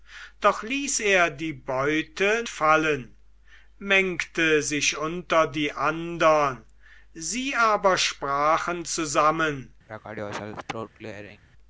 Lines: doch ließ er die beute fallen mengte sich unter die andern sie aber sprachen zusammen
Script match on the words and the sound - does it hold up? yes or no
no